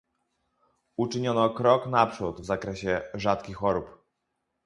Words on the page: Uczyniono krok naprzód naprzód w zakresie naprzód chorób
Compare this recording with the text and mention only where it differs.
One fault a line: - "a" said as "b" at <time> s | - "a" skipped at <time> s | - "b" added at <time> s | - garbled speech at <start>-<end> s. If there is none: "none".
- "naprzód" skipped at 2.4 s
- "naprzód" said as "rzadkich" at 3.1 s